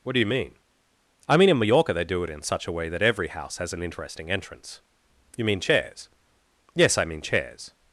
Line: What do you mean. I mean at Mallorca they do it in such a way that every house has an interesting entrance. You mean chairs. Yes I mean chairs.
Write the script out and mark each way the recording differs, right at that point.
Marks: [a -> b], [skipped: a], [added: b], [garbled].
What do you mean. I mean [at -> in] Mallorca they do it in such a way that every house has an interesting entrance. You mean chairs. Yes I mean chairs.